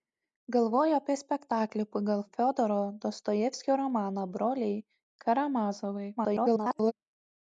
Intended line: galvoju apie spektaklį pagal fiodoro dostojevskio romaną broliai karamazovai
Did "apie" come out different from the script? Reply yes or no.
no